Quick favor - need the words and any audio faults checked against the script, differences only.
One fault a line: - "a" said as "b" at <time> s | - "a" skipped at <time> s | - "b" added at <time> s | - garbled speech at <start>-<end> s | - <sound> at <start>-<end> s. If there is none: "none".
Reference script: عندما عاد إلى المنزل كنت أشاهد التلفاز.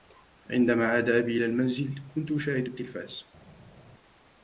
- "أبي" added at 1.1 s